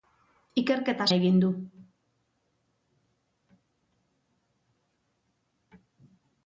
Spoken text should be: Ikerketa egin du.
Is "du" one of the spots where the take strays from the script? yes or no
no